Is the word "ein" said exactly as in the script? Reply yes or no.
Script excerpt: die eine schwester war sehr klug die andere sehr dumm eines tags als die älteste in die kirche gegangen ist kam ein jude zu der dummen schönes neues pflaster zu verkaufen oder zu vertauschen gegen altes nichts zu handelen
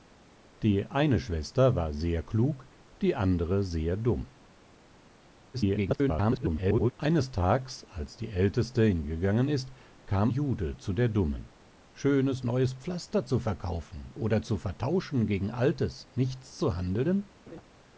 no